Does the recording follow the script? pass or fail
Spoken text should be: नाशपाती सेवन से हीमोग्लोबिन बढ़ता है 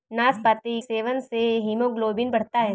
pass